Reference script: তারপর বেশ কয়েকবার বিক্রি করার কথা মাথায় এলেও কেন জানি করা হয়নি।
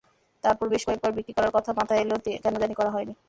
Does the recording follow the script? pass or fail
pass